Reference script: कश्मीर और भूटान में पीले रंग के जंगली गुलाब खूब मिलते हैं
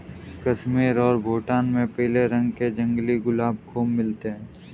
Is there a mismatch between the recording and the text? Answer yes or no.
no